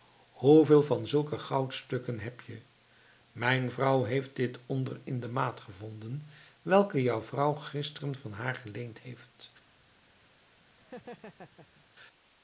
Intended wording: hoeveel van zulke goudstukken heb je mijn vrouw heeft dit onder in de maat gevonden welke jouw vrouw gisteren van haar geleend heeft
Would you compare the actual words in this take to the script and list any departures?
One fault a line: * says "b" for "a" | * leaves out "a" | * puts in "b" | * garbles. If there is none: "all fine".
all fine